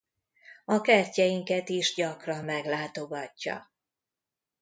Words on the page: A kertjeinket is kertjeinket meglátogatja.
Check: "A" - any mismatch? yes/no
no